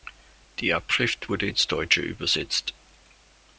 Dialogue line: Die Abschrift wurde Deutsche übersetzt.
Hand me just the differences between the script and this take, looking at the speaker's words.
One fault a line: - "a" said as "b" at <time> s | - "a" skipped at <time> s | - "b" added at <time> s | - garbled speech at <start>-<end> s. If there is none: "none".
- "ins" added at 1.5 s